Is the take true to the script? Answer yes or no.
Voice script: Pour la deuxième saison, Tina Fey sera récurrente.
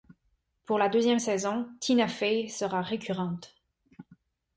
yes